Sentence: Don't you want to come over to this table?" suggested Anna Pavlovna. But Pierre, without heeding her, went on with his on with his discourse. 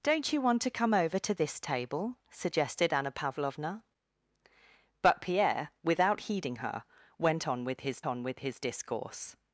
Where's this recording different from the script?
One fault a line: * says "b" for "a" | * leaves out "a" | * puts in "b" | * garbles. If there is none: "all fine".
all fine